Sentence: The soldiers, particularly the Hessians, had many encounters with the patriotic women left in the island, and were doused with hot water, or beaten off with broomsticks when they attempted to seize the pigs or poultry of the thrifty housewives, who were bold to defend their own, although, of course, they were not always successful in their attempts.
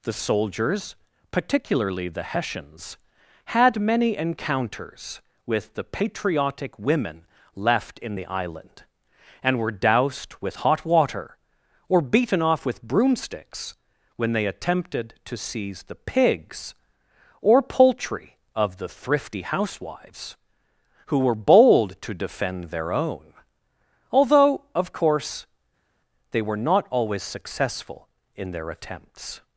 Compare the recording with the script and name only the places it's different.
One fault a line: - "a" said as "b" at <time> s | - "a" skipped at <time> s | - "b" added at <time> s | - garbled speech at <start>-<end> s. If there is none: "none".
none